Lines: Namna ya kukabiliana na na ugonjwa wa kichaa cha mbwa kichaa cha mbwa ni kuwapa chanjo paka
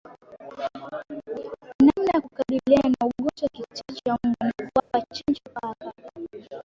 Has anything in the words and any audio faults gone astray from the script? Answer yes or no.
yes